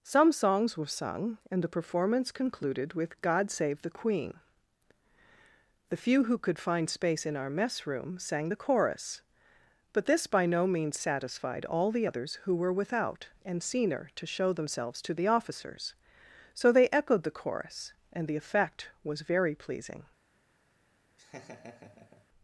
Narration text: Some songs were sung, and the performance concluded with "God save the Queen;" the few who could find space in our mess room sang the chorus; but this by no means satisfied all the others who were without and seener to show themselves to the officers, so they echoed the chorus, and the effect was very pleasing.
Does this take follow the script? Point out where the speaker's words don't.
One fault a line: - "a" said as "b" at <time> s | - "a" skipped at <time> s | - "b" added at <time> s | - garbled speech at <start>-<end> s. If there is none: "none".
none